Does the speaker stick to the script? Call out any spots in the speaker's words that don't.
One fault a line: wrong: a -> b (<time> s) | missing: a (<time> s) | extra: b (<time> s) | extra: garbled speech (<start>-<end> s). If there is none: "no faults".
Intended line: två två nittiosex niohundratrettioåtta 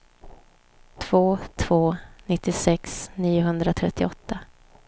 no faults